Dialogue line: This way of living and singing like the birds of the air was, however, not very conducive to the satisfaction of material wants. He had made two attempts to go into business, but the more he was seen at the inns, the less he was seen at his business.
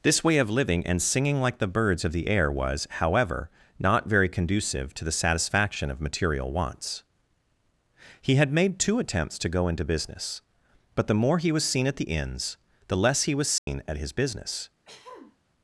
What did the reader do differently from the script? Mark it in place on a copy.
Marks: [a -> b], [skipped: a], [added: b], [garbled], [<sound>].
This way of living and singing like the birds of the air was, however, not very conducive to the satisfaction of material wants. He had made two attempts to go into business, but the more he was seen at the inns, the less he was seen [dropout] at his business. [throat clearing]